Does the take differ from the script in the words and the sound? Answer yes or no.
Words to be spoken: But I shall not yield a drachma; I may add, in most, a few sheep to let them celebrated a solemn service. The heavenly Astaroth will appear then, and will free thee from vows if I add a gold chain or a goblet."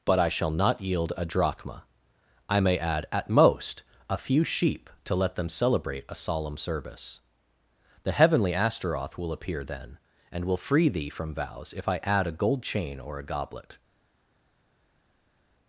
yes